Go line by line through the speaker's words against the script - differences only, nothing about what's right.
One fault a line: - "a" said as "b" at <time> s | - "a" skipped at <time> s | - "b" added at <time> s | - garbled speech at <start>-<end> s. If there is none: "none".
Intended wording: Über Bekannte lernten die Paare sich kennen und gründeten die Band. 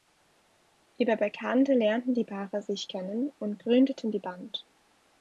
none